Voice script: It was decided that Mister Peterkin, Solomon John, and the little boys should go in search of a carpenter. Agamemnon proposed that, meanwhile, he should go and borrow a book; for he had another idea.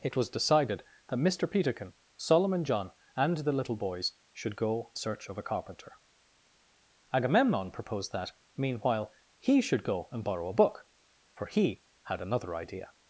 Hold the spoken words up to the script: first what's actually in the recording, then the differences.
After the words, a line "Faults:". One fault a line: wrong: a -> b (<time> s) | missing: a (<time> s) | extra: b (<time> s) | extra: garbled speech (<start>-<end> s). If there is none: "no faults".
It was decided that Mister Peterkin, Solomon John, and the little boys should go search of a carpenter. Agamemnon proposed that, meanwhile, he should go and borrow a book; for he had another idea.
Faults:
missing: in (4.9 s)